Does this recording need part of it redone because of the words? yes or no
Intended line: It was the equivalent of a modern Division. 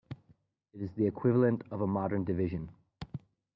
yes